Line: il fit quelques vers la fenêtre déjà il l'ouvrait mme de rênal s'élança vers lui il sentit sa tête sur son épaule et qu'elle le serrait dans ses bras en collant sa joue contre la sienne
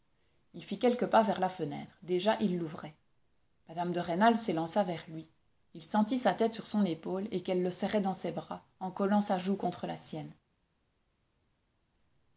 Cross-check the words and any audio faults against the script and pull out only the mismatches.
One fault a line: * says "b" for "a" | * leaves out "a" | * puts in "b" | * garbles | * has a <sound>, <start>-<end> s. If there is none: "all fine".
* puts in "pas"